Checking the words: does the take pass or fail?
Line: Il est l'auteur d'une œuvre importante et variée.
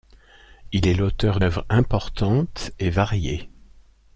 fail